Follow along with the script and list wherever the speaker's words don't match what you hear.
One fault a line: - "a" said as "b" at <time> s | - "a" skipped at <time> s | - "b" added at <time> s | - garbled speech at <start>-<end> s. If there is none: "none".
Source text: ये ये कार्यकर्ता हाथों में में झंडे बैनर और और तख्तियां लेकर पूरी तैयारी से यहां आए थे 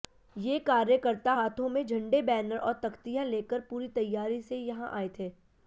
- "ये" skipped at 0.6 s
- "में" skipped at 1.8 s
- "और" skipped at 2.7 s